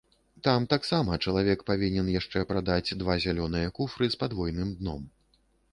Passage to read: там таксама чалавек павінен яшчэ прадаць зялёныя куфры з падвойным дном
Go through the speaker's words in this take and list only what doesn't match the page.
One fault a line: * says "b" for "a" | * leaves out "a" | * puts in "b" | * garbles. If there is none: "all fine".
* puts in "два"